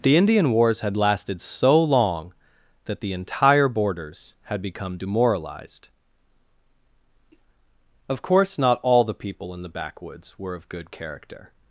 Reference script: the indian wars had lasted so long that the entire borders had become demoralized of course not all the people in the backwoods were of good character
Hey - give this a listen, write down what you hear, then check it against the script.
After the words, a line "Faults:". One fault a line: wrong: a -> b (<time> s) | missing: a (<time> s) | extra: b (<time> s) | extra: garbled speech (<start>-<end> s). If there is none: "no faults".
the indian wars had lasted so long that the entire borders had become demoralized of course not all the people in the backwoods were of good character
Faults:
no faults